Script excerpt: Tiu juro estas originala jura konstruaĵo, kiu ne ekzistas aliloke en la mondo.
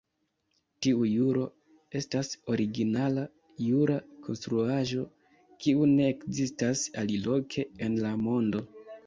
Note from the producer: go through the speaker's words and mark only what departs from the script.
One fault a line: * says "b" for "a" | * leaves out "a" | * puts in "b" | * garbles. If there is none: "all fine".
all fine